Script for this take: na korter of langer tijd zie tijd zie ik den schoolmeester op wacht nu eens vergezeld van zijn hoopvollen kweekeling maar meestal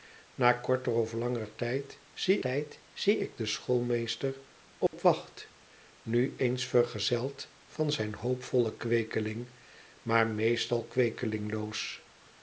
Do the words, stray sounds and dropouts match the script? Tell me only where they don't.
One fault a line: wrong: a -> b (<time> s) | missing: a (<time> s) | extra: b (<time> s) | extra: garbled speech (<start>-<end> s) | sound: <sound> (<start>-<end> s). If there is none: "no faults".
sound: dropout (4.9-4.9 s)